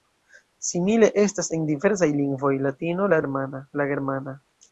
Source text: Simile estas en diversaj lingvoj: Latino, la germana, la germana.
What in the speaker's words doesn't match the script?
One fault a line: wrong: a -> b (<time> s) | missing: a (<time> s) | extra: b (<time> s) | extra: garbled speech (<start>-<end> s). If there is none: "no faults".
no faults